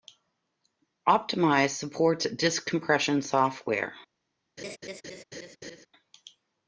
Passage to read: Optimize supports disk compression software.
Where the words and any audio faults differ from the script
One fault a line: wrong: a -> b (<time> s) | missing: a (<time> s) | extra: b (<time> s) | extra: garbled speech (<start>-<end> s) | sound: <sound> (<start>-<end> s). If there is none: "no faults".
sound: laugh (4.6-5.9 s)